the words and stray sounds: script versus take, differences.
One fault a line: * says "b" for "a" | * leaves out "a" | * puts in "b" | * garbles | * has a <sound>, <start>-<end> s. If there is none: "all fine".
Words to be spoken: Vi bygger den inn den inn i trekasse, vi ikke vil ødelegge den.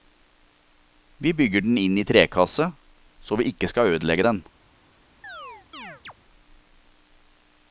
* leaves out "den inn"
* puts in "så"
* says "skal" for "vil"
* has a chirp, 5.2-6.1 s